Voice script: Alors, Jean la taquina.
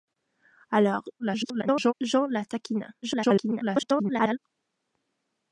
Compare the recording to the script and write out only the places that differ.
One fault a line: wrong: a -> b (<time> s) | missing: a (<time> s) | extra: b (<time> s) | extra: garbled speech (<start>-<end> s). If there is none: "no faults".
extra: garbled speech (1.2-1.9 s)
extra: garbled speech (3.0-4.4 s)